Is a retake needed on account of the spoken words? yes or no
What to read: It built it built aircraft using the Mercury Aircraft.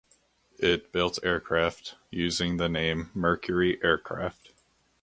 yes